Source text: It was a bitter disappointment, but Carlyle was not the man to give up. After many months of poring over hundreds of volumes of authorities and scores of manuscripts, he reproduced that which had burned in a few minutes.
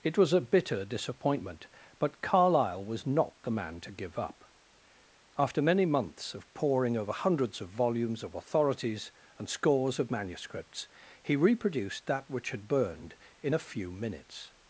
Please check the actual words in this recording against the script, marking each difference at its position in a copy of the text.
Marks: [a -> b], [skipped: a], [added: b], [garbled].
It was a bitter disappointment, but Carlyle was not the man to give up. After many months of poring over hundreds of volumes of authorities and scores of manuscripts, he reproduced that which had burned in a few minutes.